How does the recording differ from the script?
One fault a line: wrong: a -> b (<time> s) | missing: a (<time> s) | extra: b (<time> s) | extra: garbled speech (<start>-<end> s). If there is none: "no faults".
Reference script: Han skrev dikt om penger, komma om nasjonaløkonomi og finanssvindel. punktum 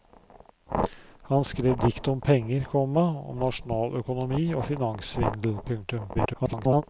extra: garbled speech (6.1-6.8 s)